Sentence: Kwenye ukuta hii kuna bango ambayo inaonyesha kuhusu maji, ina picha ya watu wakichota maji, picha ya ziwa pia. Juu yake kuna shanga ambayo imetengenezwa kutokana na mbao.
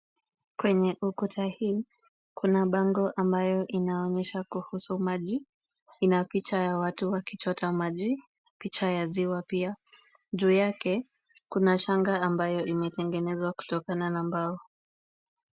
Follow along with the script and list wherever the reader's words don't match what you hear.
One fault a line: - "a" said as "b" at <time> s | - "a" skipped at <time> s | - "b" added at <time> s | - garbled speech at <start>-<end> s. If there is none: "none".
none